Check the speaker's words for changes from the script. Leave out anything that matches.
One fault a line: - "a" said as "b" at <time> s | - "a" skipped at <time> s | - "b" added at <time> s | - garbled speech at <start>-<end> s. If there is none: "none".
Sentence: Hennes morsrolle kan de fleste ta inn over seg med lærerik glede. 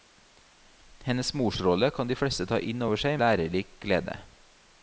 - "med" skipped at 3.2 s